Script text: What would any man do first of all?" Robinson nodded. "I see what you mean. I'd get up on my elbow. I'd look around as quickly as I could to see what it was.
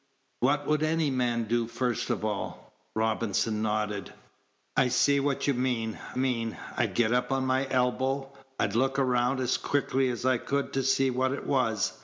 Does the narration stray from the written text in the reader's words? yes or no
yes